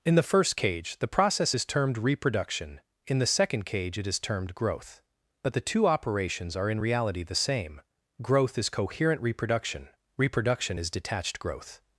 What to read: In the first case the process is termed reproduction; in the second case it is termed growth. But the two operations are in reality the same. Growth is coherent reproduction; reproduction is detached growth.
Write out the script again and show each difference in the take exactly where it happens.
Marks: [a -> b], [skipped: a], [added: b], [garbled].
In the first [case -> cage] the process is termed reproduction; in the second [case -> cage] it is termed growth. But the two operations are in reality the same. Growth is coherent reproduction; reproduction is detached growth.